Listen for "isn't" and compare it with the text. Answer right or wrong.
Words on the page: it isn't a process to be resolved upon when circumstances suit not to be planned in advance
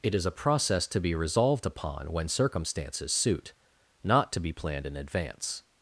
wrong